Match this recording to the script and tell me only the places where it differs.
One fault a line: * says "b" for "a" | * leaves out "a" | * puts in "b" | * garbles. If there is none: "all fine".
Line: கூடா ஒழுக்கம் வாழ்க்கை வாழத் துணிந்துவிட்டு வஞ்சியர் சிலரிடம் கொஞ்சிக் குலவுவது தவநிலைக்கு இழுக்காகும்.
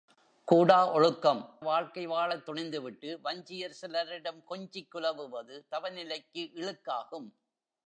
all fine